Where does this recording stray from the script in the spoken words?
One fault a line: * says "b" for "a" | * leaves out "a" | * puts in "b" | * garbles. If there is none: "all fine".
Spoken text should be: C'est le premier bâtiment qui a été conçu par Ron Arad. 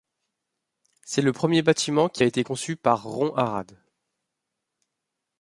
all fine